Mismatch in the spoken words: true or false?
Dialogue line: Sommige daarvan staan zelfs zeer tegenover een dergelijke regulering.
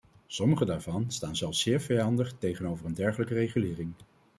true